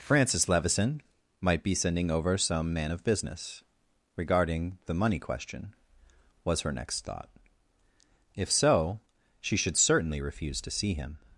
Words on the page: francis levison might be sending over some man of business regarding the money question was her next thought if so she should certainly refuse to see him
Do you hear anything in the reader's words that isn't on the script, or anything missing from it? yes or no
no